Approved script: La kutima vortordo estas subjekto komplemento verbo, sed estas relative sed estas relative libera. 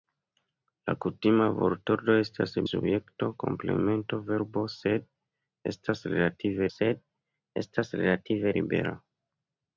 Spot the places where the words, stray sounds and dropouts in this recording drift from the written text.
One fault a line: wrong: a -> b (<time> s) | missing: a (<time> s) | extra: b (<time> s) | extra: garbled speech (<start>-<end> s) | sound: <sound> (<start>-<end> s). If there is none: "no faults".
no faults